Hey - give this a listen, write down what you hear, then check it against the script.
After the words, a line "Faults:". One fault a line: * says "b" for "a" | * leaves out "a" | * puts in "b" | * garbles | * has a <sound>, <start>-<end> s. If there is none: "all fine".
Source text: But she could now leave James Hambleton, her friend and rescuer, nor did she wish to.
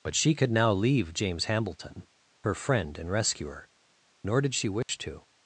But she could now leave James Hambleton, her friend and rescuer, nor did she wish to.
Faults:
* has a dropout, 4.8-4.9 s